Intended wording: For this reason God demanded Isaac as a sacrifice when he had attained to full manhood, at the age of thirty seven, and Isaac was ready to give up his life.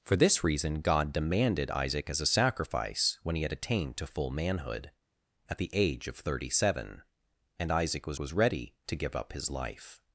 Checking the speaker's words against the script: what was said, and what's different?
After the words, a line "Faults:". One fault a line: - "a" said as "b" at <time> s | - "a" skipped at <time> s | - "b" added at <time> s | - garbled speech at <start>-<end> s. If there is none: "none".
For this reason God demanded Isaac as a sacrifice when he had attained to full manhood, at the age of thirty seven, and Isaac was was ready to give up his life.
Faults:
- "was" added at 8.2 s